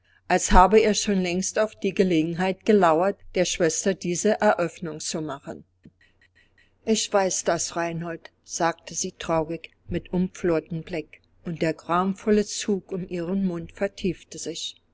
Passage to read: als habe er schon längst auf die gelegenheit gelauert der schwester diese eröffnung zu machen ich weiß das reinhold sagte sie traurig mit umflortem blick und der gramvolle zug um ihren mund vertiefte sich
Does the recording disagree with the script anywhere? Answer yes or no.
no